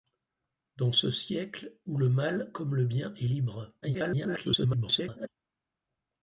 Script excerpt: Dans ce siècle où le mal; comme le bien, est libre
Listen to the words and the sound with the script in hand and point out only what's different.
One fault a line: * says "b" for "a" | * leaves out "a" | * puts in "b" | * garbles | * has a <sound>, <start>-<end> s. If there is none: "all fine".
* garbles